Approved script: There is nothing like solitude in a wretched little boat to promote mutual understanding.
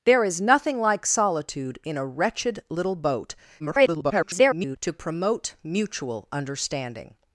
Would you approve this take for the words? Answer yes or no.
no